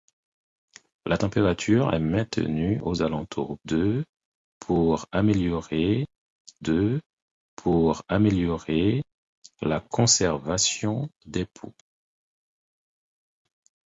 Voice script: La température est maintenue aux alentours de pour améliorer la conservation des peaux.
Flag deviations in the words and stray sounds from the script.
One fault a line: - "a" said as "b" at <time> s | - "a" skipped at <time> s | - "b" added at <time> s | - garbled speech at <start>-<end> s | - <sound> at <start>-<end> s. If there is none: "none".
- "de pour améliorer" added at 6.6 s